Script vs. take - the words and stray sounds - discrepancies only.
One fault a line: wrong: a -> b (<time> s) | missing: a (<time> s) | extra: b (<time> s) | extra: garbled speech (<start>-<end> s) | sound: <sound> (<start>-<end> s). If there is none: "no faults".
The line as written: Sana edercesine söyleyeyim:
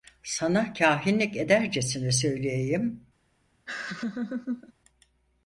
extra: kâhinlik (0.7 s)
sound: laugh (3.7-4.7 s)